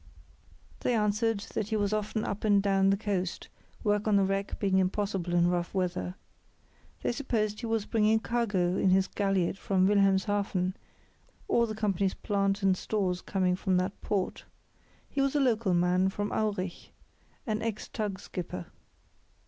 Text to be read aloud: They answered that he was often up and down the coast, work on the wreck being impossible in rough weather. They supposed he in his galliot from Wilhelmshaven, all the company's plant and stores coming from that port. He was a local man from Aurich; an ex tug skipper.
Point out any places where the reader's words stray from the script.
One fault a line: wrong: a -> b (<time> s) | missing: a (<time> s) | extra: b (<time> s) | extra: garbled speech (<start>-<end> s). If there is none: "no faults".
extra: was bringing cargo (7.7 s)